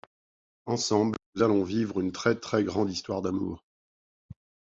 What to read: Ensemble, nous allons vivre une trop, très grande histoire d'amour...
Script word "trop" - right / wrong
wrong